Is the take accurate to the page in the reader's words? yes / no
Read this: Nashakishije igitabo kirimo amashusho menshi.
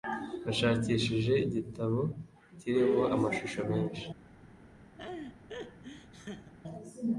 yes